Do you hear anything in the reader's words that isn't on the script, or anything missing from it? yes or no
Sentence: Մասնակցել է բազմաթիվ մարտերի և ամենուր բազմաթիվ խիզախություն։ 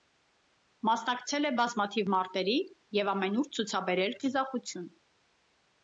yes